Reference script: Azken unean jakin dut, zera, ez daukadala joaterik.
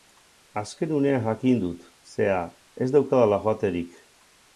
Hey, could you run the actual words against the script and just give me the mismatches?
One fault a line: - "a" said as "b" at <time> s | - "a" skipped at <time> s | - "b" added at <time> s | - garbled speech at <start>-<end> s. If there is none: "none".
none